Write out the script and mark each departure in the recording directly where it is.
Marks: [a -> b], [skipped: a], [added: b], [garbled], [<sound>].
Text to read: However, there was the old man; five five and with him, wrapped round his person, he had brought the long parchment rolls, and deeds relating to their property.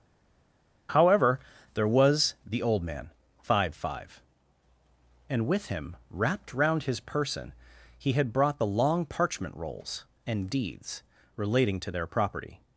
However, there was the old man; five five and with him, wrapped round his person, he had brought the long parchment rolls, and deeds relating to their property.